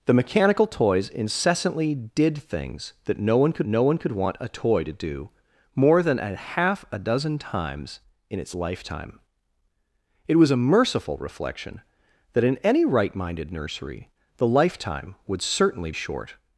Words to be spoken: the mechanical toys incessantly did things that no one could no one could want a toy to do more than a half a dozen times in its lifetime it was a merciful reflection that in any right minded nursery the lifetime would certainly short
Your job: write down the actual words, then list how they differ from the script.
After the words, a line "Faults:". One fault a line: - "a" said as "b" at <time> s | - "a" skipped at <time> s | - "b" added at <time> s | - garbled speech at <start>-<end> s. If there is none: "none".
the mechanical toys incessantly did things that no one could no one could want a toy to do more than a half a dozen times in its lifetime it was a merciful reflection that in any right minded nursery the lifetime would certainly short
Faults:
none